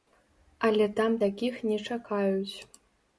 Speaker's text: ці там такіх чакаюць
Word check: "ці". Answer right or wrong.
wrong